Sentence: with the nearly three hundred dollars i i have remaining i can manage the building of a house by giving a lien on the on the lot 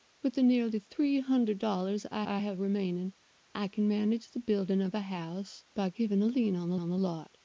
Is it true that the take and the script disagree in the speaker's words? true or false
false